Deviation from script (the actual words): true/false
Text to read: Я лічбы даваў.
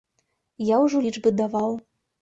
true